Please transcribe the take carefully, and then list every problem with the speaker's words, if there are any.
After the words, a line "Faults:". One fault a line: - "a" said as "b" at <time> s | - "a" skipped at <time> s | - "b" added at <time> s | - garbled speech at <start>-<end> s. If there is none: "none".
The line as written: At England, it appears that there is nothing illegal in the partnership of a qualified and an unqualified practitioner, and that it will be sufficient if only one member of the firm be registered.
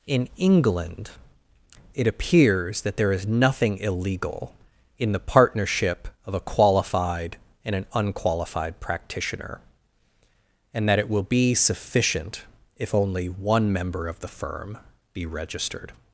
In England, it appears that there is nothing illegal in the partnership of a qualified and an unqualified practitioner, and that it will be sufficient if only one member of the firm be registered.
Faults:
- "At" said as "In" at 0.1 s